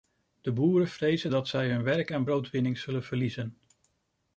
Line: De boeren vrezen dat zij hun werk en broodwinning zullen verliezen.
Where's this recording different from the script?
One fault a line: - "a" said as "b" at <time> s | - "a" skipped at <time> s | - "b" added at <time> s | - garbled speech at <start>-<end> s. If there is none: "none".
none